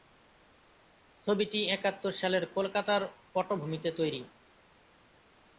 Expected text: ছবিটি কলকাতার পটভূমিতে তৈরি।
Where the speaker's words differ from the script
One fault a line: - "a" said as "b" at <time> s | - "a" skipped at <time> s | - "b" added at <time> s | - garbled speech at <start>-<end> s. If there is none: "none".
- "একাত্তর সালের" added at 1.7 s